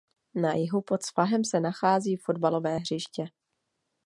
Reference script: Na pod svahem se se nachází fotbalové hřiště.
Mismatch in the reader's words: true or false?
true